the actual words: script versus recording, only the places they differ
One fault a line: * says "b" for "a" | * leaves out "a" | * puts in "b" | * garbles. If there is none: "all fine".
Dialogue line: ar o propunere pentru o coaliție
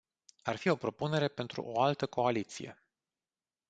* puts in "fi"
* puts in "altă"